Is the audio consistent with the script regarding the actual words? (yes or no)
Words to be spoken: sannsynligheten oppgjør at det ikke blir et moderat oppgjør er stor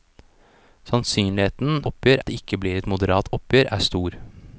yes